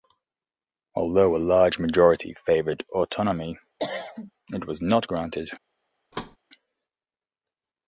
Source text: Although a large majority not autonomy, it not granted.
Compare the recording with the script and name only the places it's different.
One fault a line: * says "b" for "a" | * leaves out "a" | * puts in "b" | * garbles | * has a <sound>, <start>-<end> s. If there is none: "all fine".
* says "favoured" for "not"
* has a cough, 3.8-4.3 s
* puts in "was"
* has a thud, 6.1-6.4 s